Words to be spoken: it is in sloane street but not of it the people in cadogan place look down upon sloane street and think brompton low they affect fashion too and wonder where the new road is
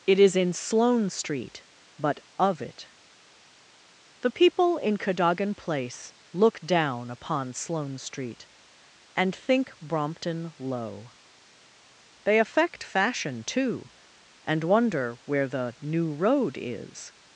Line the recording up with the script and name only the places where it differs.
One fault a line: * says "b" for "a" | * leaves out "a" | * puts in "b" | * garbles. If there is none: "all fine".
* leaves out "not"